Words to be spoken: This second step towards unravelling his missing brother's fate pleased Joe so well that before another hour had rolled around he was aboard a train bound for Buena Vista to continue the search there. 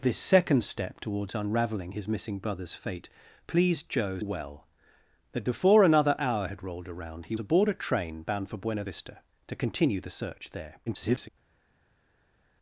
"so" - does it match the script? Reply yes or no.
no